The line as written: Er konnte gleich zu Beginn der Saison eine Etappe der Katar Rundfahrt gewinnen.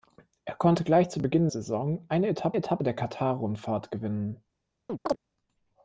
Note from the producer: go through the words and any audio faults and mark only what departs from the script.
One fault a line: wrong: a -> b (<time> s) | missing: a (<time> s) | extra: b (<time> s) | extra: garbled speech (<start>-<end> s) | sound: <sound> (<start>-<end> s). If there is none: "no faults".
missing: der (1.5 s)
extra: Etappe (2.5 s)
sound: chirp (4.9-5.2 s)